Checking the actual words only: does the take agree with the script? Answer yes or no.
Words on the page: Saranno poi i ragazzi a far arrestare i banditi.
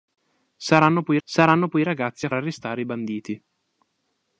no